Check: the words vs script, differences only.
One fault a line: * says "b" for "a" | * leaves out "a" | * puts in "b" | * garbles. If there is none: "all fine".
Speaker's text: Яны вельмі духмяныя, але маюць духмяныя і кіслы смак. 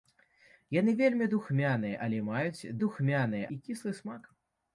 all fine